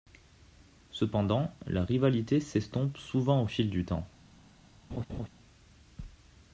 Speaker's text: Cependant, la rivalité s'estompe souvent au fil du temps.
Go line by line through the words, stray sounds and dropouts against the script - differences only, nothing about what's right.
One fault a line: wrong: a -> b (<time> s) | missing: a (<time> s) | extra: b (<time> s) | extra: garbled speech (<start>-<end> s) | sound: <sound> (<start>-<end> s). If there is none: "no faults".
sound: laugh (4.9-5.3 s)